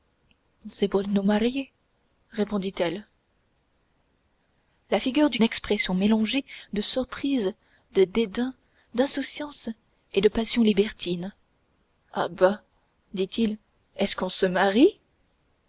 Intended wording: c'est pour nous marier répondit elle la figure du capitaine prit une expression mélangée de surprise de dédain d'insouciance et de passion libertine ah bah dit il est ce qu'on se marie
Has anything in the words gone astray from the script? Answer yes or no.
yes